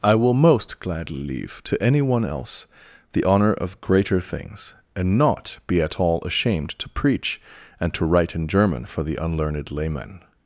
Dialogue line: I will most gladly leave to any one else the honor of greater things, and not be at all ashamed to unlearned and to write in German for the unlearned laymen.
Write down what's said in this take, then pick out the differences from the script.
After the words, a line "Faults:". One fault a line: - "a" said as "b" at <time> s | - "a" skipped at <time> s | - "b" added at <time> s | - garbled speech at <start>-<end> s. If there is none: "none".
I will most gladly leave to any one else the honor of greater things, and not be at all ashamed to preach and to write in German for the unlearned laymen.
Faults:
- "unlearned" said as "preach" at 6.9 s